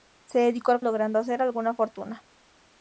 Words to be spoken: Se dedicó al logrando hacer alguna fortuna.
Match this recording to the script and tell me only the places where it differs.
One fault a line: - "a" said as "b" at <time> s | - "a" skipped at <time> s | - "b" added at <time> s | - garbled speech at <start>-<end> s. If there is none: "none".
none